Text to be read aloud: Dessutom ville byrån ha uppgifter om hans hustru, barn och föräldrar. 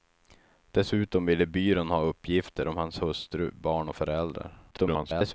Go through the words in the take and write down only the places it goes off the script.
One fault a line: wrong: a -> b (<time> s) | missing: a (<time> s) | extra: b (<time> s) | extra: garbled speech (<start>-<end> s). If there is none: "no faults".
extra: garbled speech (4.7-5.3 s)